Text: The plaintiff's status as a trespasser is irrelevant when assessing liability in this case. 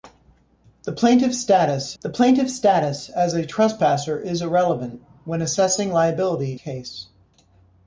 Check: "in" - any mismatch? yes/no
yes